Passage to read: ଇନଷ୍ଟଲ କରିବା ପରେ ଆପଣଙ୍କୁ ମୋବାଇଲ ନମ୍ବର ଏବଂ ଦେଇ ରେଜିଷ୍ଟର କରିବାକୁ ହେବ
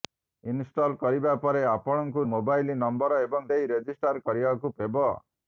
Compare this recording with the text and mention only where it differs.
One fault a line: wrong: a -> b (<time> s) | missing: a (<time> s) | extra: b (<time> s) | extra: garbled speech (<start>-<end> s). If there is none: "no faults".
no faults